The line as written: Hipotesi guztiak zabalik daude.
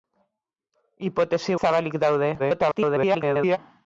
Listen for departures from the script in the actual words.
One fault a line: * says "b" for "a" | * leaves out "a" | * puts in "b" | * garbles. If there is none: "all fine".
* leaves out "guztiak"
* garbles